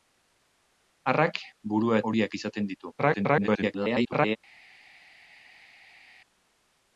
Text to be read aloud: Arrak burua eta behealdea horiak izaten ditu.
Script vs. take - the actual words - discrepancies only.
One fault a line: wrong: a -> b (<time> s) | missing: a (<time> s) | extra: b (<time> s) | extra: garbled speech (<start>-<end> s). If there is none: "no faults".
missing: eta behealdea (2.0 s)
extra: garbled speech (3.0-4.4 s)